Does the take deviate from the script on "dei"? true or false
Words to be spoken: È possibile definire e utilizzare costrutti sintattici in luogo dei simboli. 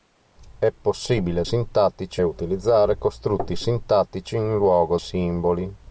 true